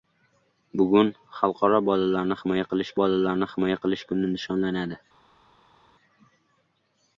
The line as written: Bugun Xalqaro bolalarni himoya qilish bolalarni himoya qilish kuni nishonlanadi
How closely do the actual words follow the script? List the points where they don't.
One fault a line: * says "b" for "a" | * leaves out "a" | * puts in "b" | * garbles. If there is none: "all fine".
all fine